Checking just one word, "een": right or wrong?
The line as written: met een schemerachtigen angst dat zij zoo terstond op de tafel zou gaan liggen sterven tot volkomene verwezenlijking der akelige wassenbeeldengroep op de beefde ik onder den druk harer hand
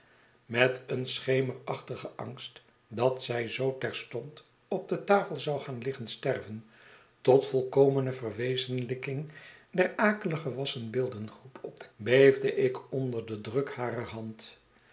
right